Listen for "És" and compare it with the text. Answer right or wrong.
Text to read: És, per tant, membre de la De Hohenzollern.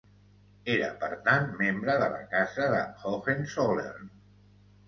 wrong